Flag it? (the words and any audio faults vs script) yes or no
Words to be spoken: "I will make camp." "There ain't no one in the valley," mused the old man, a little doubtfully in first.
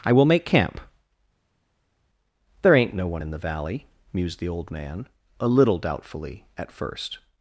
yes